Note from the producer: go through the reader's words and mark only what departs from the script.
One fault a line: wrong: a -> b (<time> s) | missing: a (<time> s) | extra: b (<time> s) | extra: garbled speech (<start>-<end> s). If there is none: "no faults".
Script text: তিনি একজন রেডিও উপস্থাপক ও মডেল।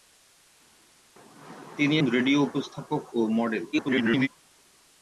missing: একজন (1.9 s)
extra: garbled speech (3.7-4.3 s)